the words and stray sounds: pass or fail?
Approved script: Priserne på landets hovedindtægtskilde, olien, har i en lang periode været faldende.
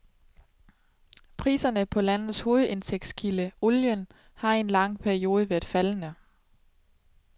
pass